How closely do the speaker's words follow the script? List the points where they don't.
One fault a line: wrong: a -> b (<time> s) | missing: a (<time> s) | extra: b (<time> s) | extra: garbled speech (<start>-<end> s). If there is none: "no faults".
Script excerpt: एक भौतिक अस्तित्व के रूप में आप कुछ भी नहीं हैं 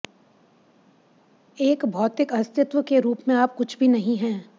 no faults